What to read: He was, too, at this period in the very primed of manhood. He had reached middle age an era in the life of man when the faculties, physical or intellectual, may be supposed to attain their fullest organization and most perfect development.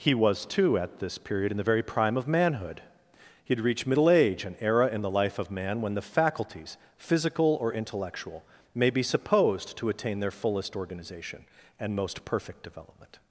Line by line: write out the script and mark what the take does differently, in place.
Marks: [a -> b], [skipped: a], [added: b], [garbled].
He was, too, at this period in the very [primed -> prime] of manhood. He had reached middle age an era in the life of man when the faculties, physical or intellectual, may be supposed to attain their fullest organization and most perfect development.